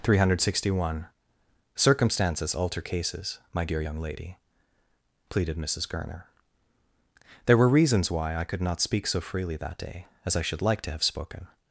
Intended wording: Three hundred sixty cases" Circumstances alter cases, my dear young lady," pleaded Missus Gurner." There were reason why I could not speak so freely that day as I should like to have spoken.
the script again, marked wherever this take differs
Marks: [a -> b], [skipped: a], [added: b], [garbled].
Three hundred sixty [cases" -> one] Circumstances alter cases, my dear young lady," pleaded Missus Gurner." There were [reason -> reasons] why I could not speak so freely that day as I should like to have spoken.